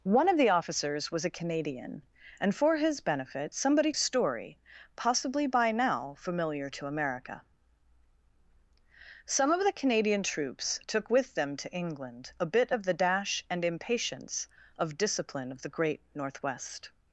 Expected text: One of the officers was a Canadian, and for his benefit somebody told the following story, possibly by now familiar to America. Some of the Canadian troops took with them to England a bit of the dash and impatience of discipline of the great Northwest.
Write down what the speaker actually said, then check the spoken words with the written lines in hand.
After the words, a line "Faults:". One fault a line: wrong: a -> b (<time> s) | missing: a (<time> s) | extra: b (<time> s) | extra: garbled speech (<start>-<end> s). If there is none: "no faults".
One of the officers was a Canadian, and for his benefit somebody story, possibly by now familiar to America. Some of the Canadian troops took with them to England a bit of the dash and impatience of discipline of the great Northwest.
Faults:
missing: told the following (3.9 s)